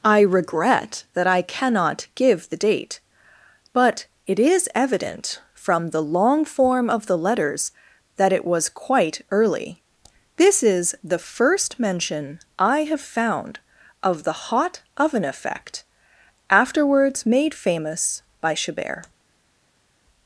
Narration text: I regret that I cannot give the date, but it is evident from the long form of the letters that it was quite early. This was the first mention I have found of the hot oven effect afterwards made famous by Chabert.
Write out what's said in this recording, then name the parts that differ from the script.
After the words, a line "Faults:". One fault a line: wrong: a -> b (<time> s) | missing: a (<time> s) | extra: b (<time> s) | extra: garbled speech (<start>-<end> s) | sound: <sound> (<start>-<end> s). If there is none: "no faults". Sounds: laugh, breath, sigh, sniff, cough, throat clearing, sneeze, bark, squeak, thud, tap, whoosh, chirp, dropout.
I regret that I cannot give the date, but it is evident from the long form of the letters that it was quite early. This is the first mention I have found of the hot oven effect afterwards made famous by Chabert.
Faults:
wrong: was -> is (10.6 s)